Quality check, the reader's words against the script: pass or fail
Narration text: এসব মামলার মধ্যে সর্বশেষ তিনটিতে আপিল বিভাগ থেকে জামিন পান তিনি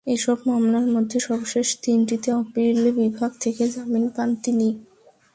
pass